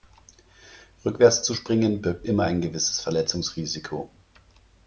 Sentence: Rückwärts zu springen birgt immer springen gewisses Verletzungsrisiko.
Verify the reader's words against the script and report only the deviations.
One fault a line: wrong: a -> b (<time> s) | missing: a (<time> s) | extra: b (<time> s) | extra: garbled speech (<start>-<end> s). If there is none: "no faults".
wrong: springen -> ein (2.4 s)